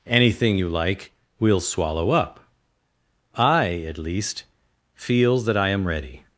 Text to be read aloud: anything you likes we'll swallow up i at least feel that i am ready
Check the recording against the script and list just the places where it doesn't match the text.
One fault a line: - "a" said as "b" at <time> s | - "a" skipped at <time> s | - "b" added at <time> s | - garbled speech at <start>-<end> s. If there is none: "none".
- "likes" said as "like" at 0.7 s